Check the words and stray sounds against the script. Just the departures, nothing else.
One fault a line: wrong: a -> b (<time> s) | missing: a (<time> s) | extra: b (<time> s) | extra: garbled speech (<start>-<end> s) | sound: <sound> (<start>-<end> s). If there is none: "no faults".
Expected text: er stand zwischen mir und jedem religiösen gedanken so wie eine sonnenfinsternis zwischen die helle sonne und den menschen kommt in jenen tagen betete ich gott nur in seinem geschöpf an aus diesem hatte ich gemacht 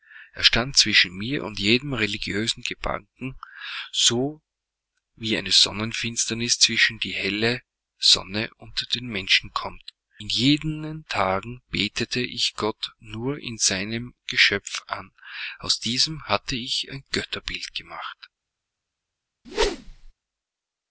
extra: ein götterbild (16.9 s)
sound: whoosh (19.4-20.1 s)